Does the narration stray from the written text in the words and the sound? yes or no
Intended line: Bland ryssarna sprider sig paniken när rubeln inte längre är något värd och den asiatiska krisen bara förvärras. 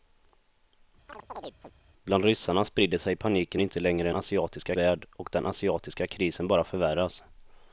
yes